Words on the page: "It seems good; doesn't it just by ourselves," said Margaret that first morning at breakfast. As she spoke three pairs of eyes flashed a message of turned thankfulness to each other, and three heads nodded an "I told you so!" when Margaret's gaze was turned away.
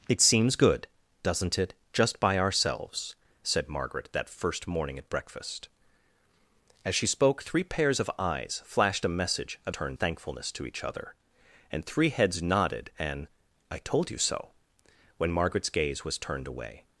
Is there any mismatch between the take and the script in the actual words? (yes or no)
no